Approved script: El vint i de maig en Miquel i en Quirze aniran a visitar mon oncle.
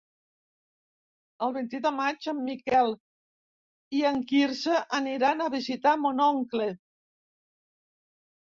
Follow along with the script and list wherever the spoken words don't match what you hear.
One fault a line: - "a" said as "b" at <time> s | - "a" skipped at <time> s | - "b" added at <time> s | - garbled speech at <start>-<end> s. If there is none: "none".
none